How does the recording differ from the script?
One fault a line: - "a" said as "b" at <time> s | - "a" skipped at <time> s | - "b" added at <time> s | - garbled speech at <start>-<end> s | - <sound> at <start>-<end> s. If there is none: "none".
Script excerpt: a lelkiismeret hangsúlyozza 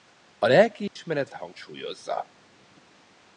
- dropout at 0.9-1.0 s